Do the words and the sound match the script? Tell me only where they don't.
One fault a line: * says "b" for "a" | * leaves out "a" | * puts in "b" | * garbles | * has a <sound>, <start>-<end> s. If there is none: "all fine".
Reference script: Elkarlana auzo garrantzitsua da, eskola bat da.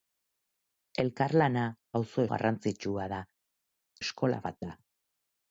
all fine